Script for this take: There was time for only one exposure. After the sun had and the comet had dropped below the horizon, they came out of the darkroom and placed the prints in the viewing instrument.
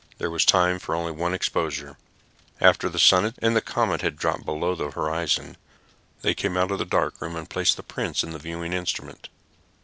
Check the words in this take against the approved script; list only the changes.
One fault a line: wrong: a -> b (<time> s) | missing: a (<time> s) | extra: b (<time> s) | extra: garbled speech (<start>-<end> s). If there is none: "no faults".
no faults